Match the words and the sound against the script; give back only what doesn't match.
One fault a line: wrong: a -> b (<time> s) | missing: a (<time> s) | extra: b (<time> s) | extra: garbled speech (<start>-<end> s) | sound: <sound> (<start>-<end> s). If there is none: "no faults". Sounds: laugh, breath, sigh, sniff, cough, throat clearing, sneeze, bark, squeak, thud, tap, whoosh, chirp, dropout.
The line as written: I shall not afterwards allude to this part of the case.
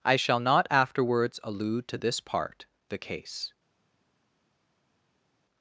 missing: of (2.7 s)